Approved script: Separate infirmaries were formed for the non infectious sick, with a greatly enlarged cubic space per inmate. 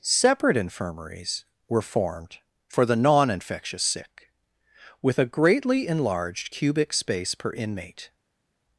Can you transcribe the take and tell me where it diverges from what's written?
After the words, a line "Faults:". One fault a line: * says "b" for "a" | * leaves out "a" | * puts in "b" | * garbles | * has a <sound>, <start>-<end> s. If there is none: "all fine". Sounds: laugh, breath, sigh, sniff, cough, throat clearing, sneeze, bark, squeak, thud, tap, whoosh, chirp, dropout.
Separate infirmaries were formed for the non infectious sick, with a greatly enlarged cubic space per inmate.
Faults:
all fine